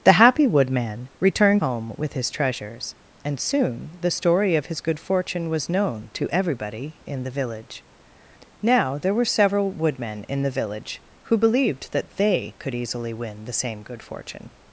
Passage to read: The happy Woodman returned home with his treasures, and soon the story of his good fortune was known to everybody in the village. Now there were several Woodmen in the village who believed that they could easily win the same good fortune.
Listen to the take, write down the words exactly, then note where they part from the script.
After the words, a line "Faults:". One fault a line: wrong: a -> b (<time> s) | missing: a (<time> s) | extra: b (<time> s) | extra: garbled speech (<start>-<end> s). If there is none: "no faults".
The happy Woodman returned home with his treasures, and soon the story of his good fortune was known to everybody in the village. Now there were several Woodmen in the village who believed that they could easily win the same good fortune.
Faults:
no faults